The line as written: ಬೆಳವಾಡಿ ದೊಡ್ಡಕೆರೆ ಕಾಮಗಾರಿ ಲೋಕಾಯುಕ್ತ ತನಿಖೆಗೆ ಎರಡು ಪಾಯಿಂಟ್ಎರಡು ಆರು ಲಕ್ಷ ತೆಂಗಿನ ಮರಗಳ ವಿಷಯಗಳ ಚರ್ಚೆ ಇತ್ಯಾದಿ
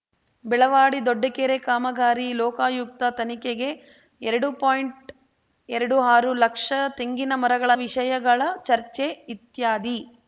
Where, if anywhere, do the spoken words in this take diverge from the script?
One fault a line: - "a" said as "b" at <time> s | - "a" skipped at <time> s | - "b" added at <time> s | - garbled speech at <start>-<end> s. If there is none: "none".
none